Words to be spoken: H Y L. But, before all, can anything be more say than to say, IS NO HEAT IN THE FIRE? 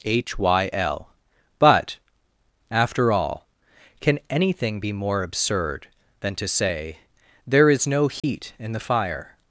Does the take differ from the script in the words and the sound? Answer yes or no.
yes